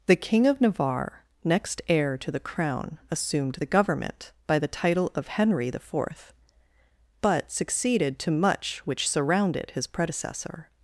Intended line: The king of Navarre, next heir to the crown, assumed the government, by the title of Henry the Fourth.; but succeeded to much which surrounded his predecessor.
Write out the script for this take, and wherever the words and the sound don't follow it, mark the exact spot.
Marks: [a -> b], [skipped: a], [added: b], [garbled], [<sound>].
The king of Navarre, next heir to the crown, assumed the government, by the title of Henry the Fourth.; but succeeded to much which surrounded his predecessor.